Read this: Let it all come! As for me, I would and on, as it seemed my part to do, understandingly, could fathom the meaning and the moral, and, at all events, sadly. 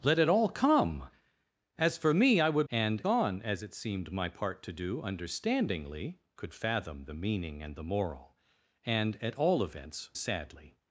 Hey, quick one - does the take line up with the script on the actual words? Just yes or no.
yes